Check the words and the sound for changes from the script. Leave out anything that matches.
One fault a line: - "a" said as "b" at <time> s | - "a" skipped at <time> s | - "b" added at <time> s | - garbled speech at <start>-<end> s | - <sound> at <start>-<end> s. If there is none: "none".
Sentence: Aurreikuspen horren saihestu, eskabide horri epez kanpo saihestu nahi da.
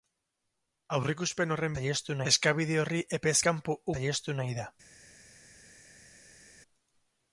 none